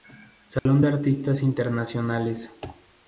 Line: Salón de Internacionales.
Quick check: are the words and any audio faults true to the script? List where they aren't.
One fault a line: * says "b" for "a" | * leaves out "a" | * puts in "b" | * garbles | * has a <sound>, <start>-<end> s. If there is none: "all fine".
* has a dropout, 0.6-0.7 s
* puts in "Artistas"